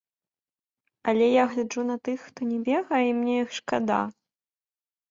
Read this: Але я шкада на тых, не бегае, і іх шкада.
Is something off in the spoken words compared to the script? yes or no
yes